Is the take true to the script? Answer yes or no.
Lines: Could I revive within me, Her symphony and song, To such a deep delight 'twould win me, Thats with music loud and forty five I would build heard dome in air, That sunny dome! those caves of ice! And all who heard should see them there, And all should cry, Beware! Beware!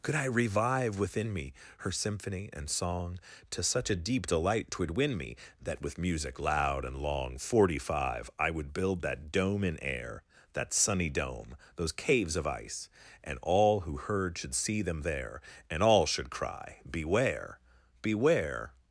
no